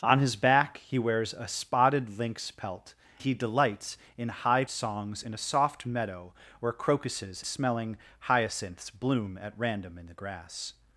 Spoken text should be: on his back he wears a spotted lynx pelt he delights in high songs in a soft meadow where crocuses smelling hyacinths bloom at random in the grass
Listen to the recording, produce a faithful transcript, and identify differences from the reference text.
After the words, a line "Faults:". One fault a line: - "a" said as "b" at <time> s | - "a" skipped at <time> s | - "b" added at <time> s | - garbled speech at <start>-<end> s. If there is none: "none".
on his back he wears a spotted lynx pelt he delights in high songs in a soft meadow where crocuses smelling hyacinths bloom at random in the grass
Faults:
none